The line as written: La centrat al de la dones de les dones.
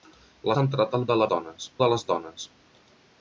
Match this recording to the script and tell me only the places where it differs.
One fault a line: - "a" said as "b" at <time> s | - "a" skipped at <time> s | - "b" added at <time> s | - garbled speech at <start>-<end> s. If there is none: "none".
none